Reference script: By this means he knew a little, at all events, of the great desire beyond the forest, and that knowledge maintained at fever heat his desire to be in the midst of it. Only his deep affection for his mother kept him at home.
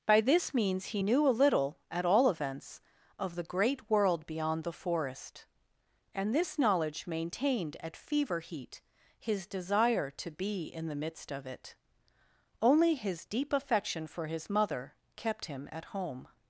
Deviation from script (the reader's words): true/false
true